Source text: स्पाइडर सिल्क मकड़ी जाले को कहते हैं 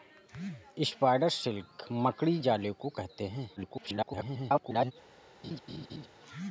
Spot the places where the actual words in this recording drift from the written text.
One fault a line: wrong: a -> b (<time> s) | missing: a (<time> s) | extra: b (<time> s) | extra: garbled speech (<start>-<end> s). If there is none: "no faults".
extra: garbled speech (3.6-4.9 s)